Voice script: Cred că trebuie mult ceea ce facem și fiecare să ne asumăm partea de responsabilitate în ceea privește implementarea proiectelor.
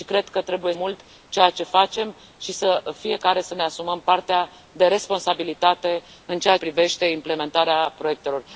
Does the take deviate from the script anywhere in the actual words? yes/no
no